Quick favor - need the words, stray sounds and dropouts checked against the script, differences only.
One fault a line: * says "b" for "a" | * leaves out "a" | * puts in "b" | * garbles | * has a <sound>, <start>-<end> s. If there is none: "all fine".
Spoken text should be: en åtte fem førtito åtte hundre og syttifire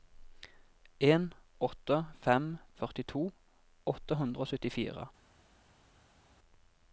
all fine